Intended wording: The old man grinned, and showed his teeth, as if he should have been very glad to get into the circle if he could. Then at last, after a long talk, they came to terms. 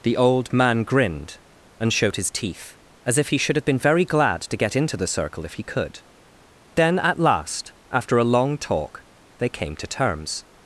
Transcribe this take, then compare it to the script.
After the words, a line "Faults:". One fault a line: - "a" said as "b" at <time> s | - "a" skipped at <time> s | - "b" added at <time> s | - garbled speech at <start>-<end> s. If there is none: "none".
The old man grinned, and showed his teeth, as if he should have been very glad to get into the circle if he could. Then at last, after a long talk, they came to terms.
Faults:
none